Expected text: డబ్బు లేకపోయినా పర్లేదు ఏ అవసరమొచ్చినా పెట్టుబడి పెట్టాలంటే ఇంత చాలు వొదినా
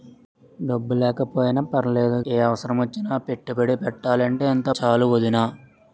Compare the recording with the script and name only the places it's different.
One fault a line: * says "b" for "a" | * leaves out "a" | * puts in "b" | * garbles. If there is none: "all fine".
all fine